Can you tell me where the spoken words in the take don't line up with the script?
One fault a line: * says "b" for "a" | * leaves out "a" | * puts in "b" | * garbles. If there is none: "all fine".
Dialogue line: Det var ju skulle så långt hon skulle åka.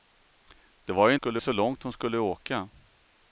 all fine